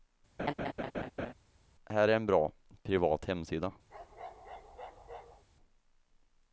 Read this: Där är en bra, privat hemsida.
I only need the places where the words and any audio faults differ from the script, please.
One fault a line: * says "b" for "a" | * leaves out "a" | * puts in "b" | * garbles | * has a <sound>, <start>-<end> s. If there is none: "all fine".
* has a laugh, 0.4-1.3 s
* says "Här" for "Där"
* has a bark, 3.9-5.4 s